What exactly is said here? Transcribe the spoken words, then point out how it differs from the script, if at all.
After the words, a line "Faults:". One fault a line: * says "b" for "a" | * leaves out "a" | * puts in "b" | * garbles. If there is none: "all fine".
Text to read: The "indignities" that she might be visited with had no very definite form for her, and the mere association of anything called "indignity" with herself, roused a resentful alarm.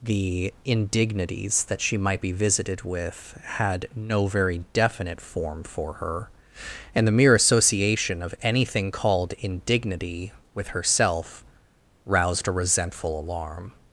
The "indignities" that she might be visited with had no very definite form for her, and the mere association of anything called "indignity" with herself, roused a resentful alarm.
Faults:
all fine